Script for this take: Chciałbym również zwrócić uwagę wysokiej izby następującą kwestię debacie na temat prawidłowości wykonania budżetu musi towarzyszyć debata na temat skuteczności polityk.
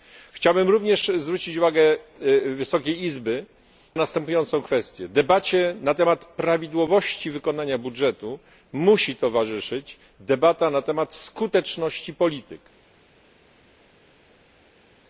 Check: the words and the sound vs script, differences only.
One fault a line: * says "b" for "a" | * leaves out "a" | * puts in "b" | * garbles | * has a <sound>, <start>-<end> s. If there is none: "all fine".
all fine